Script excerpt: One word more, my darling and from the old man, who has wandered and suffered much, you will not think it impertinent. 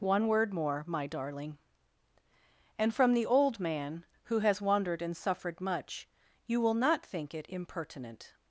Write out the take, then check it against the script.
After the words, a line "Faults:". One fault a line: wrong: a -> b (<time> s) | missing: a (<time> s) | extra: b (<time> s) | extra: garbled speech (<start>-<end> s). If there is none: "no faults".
One word more, my darling and from the old man, who has wandered and suffered much, you will not think it impertinent.
Faults:
no faults